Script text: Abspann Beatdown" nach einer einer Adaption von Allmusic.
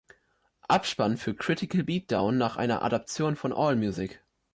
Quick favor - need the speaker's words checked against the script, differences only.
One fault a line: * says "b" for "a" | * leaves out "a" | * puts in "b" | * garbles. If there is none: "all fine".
* puts in "für Critical"
* leaves out "einer"